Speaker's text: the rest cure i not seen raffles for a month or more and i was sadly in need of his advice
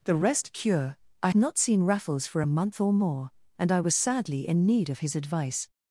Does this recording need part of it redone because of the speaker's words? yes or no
no